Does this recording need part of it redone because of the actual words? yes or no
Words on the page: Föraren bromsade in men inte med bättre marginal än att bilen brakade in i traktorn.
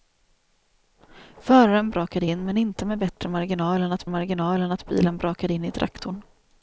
yes